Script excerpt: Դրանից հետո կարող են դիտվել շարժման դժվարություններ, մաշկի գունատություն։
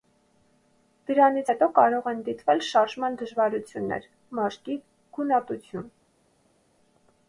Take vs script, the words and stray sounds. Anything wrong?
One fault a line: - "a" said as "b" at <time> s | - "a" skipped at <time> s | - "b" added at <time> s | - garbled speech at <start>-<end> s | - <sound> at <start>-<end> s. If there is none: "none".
none